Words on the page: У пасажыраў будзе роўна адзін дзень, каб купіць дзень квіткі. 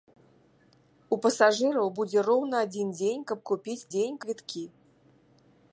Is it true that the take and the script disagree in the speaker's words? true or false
false